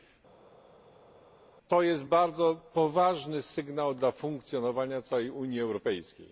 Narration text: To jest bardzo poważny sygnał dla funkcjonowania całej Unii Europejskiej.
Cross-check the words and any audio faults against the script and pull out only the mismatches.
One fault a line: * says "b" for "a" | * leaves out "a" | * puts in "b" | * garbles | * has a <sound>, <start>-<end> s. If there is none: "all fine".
all fine